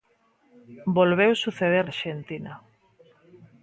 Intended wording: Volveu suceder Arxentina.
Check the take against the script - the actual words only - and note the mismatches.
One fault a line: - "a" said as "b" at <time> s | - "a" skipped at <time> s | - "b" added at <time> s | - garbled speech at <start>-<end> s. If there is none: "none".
none